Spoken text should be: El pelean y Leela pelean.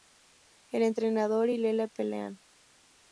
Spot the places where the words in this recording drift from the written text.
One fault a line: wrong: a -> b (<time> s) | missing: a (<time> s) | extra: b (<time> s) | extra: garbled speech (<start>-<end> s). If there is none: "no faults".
wrong: pelean -> entrenador (0.8 s)